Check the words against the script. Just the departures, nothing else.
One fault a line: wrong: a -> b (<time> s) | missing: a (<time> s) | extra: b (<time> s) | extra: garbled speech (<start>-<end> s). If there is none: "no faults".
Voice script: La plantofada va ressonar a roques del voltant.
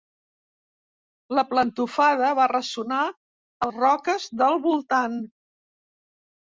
no faults